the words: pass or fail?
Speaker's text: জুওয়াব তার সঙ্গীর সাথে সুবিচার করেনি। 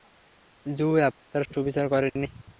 fail